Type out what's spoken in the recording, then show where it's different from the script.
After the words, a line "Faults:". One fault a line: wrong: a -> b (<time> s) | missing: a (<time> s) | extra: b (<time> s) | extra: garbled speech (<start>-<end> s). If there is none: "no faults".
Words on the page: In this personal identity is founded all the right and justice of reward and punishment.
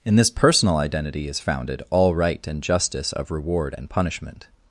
In this personal identity is founded all right and justice of reward and punishment.
Faults:
missing: the (2.1 s)